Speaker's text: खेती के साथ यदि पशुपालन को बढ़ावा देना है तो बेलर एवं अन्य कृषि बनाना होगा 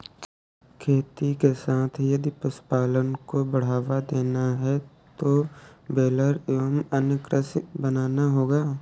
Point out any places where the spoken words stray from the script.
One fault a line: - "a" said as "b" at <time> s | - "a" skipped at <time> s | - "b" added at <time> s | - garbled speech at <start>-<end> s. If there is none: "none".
none